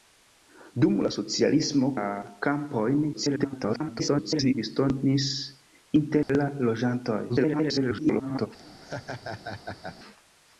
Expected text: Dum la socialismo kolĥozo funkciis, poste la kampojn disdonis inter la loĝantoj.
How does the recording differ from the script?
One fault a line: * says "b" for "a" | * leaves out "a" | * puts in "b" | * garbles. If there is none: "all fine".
* leaves out "kolĥozo funkciis poste"
* garbles
* garbles